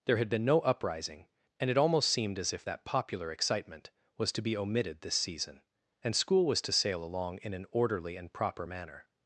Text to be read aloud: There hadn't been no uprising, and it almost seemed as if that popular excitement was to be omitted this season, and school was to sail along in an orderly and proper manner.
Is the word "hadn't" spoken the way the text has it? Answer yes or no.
no